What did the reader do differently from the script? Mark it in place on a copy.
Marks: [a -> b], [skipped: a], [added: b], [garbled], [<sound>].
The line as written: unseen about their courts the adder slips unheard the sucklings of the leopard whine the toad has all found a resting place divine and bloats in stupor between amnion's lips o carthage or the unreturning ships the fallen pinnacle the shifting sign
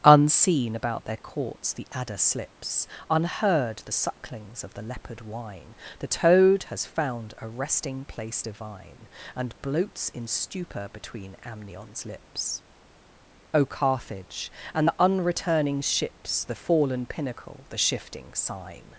unseen about their courts the adder slips unheard the sucklings of the leopard whine the toad has [skipped: all] found a resting place divine and bloats in stupor between amnion's lips o carthage [or -> and] the unreturning ships the fallen pinnacle the shifting sign